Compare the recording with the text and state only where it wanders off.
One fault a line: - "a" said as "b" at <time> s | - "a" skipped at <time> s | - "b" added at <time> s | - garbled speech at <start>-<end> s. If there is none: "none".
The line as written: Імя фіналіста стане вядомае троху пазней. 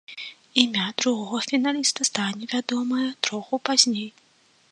- "другога" added at 1.0 s